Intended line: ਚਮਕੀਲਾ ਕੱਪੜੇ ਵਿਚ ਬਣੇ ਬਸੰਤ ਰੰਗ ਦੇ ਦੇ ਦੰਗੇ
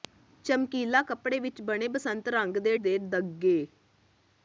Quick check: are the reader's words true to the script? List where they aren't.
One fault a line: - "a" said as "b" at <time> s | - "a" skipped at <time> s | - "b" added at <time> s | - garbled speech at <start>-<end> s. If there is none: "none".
none